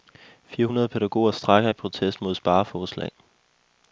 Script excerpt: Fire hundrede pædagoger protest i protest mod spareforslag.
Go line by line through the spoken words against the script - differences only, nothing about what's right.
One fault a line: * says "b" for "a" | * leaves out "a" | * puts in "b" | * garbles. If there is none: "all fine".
* says "strejker" for "protest"